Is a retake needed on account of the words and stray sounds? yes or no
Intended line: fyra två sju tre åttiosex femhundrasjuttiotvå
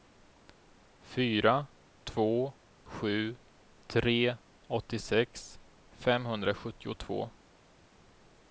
no